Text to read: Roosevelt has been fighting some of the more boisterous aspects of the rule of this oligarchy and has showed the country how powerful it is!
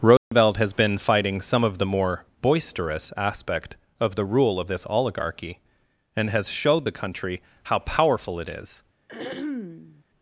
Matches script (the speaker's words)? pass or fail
fail